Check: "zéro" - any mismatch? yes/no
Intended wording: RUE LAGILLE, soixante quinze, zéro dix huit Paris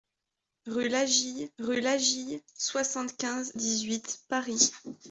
yes